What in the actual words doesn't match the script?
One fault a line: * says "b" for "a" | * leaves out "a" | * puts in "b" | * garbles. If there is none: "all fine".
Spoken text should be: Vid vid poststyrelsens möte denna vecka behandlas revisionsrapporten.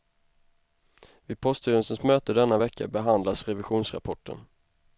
* leaves out "vid"